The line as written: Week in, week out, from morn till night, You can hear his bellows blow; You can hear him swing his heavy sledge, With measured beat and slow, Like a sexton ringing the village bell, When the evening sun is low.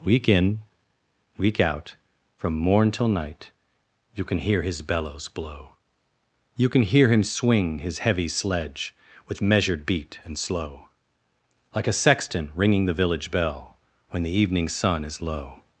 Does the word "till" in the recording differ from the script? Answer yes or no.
no